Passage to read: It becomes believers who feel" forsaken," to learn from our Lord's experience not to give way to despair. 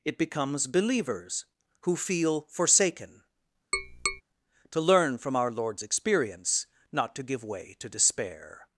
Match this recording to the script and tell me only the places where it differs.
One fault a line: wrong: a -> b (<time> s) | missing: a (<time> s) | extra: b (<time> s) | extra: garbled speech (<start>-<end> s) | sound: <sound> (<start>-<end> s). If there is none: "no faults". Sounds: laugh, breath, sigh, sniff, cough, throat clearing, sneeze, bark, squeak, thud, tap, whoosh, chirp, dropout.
sound: tap (3.7-4.2 s)